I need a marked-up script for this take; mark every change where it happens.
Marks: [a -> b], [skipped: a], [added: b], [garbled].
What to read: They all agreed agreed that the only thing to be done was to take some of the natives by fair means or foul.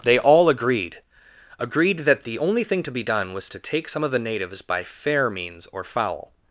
They all agreed agreed that the only thing to be done was to take some of the natives by fair means or foul.